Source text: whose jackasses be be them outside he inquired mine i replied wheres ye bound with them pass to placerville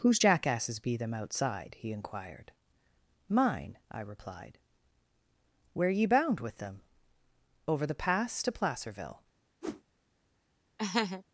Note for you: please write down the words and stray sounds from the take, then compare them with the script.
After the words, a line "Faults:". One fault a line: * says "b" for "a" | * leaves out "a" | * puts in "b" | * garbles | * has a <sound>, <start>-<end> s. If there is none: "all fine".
whose jackasses be them outside he inquired mine i replied where ye bound with them over the pass to placerville
Faults:
* leaves out "be"
* says "where" for "wheres"
* puts in "over the"
* has a whoosh, 9.6-9.8 s
* has a laugh, 10.8-11.2 s